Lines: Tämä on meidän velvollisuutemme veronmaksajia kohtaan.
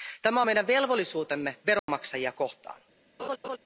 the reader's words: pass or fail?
pass